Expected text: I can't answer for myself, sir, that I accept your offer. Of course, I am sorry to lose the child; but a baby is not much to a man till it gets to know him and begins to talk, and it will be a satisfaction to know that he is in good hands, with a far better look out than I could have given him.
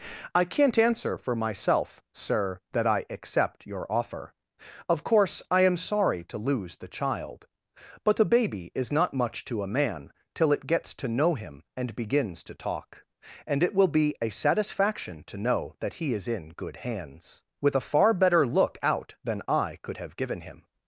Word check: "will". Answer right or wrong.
right